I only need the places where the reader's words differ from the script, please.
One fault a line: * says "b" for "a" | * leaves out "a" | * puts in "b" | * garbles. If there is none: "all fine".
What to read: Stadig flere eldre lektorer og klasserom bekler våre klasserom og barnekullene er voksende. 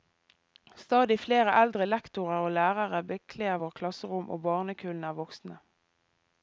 * says "lærere" for "klasserom"